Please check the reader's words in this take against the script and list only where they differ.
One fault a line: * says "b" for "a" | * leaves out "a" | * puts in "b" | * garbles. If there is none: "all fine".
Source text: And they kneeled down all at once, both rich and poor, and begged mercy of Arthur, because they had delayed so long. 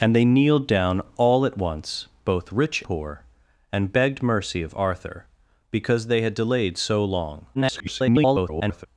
* leaves out "and"
* garbles